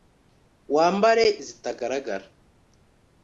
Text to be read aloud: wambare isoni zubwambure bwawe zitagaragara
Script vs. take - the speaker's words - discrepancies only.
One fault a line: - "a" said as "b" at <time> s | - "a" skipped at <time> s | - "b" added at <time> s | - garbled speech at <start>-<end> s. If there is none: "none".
- "isoni zubwambure bwawe" skipped at 1.2 s